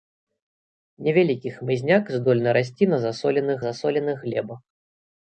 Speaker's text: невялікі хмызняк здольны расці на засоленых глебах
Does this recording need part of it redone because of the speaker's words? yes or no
yes